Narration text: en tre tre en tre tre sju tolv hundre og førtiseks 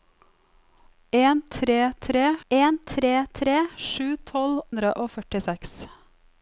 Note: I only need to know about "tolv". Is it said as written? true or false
true